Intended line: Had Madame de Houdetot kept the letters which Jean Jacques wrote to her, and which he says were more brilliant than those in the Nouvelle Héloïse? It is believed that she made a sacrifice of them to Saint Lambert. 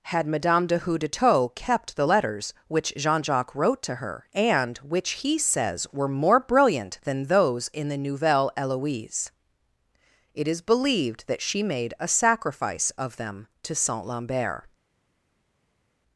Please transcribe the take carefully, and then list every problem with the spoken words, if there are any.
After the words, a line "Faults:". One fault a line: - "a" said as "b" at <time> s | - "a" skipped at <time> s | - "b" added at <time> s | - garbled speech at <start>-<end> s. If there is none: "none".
Had Madame de Houdetot kept the letters which Jean Jacques wrote to her, and which he says were more brilliant than those in the Nouvelle Héloïse? It is believed that she made a sacrifice of them to Saint Lambert.
Faults:
none